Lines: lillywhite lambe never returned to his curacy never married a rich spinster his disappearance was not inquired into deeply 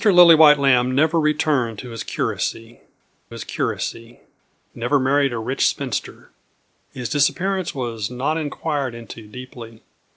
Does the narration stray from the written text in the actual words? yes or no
yes